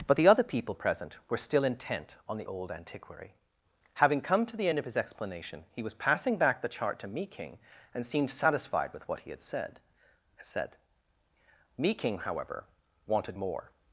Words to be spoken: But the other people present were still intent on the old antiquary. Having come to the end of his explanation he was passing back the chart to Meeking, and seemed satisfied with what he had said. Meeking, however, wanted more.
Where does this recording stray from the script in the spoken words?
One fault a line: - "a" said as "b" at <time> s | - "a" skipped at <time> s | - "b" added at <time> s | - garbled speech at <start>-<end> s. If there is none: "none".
- "said" added at 10.4 s